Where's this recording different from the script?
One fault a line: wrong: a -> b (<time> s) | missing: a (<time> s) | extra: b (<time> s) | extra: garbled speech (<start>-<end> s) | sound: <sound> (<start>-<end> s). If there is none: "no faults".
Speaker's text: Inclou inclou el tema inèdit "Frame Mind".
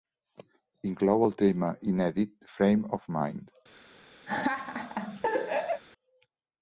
missing: inclou (1.3 s)
extra: of (3.0 s)
sound: laugh (4.3-5.8 s)